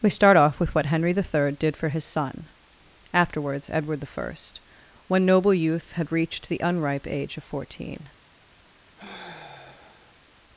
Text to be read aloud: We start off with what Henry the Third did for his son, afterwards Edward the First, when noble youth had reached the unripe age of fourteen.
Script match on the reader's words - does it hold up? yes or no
yes